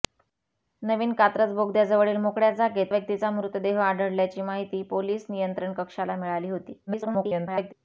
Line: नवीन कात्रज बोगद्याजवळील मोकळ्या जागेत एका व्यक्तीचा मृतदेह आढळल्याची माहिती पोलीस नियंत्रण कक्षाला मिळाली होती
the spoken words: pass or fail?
fail